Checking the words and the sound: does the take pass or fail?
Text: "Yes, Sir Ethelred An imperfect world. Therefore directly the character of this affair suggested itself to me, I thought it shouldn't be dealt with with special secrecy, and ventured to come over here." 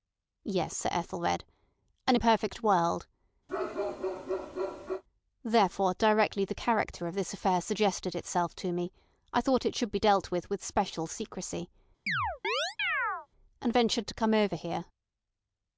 fail